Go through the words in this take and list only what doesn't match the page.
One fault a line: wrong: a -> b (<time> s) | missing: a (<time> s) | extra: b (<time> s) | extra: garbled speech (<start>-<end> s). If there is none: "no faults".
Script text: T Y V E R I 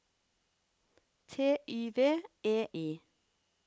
missing: R (2.7 s)